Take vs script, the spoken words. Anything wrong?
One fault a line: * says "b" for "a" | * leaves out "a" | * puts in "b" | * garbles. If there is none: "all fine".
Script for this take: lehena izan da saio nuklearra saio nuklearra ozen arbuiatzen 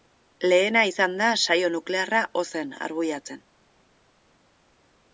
* leaves out "saio nuklearra"